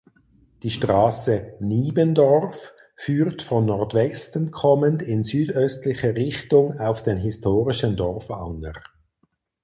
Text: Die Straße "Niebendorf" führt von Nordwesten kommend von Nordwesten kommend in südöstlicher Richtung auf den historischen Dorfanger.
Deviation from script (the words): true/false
true